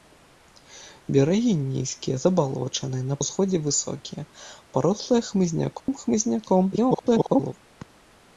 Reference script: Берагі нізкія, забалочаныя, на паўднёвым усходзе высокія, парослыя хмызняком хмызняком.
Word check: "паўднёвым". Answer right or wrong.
wrong